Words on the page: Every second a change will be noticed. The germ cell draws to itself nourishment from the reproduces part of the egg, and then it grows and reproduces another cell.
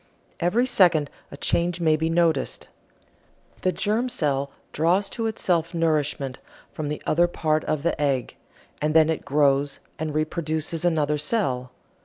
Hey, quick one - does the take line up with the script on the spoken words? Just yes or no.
no